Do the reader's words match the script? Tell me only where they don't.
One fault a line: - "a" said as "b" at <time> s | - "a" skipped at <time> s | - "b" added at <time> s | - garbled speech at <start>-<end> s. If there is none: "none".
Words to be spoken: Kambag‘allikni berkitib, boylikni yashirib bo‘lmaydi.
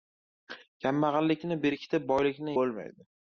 - "yashirib" skipped at 2.6 s